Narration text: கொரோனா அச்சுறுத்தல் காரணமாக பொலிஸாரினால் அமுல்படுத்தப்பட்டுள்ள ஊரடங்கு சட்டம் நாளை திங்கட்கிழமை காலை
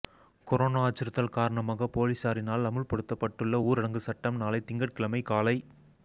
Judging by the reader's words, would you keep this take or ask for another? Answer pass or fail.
pass